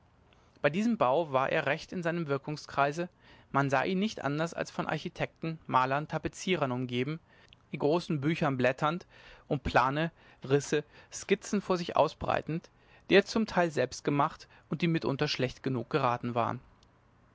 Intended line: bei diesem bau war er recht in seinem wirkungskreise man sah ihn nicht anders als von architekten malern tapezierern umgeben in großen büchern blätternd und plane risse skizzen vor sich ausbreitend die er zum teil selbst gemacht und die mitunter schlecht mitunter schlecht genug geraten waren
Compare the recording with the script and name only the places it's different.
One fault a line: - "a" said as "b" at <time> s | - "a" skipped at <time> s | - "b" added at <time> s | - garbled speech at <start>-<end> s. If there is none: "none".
- "mitunter schlecht" skipped at 15.6 s